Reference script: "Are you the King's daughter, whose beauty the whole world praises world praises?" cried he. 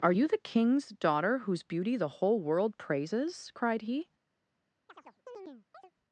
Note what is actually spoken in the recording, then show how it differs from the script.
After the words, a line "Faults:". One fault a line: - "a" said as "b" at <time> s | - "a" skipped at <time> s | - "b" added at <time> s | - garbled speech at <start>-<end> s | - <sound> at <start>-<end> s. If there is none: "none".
"Are you the King's daughter, whose beauty the whole world praises?" cried he.
Faults:
- "world praises" skipped at 3.5 s
- chirp at 4.9-5.9 s